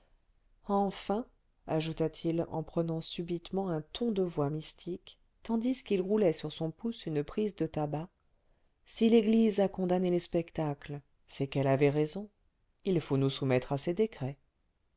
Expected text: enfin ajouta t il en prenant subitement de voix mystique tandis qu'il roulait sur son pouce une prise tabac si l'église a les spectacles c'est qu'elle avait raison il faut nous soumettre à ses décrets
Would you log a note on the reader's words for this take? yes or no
yes